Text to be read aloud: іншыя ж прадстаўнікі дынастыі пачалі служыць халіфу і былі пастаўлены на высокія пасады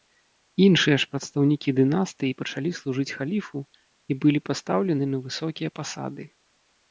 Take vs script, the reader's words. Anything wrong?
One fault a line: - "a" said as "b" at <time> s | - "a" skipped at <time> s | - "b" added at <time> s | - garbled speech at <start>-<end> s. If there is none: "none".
none